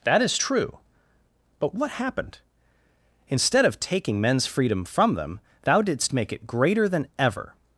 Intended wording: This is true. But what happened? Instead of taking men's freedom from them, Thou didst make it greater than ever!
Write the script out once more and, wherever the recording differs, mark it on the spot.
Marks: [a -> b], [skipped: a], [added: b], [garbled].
[This -> That] is true. But what happened? Instead of taking men's freedom from them, Thou didst make it greater than ever!